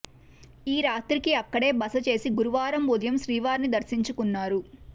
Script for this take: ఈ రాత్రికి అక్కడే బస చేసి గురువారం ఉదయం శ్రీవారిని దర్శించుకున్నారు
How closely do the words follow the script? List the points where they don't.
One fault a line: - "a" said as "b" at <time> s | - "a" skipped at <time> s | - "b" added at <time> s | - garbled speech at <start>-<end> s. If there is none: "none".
none